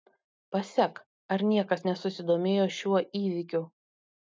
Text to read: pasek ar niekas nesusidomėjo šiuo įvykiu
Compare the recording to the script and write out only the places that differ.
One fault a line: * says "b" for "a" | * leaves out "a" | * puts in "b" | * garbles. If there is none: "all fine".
all fine